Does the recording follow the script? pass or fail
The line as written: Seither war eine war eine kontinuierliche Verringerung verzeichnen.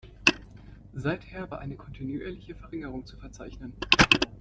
fail